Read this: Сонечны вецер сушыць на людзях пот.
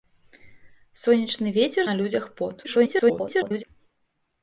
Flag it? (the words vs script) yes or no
yes